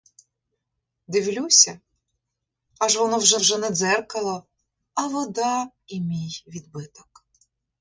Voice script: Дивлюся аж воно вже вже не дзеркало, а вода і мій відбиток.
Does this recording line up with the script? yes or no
yes